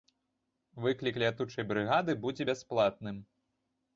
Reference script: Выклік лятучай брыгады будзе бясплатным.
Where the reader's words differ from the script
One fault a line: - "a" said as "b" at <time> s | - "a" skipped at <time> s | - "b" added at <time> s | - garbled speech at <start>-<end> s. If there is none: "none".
none